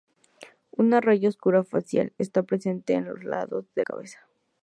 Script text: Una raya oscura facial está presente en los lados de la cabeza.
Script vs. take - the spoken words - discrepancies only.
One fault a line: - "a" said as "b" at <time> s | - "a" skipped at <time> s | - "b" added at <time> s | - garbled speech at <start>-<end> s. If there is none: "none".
- "la" skipped at 3.8 s